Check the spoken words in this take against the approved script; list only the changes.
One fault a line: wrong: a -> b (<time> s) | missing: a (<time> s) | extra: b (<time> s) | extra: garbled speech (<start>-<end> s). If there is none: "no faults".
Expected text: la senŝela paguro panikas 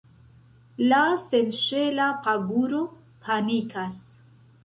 no faults